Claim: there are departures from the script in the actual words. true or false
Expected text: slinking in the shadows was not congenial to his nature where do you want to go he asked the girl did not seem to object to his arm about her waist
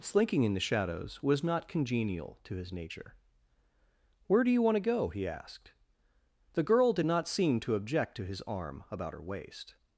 false